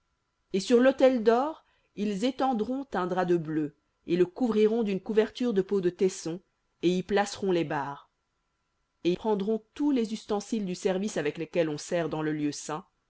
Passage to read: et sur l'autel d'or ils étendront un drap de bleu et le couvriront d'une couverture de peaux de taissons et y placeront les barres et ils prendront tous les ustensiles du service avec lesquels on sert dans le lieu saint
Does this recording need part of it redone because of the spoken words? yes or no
yes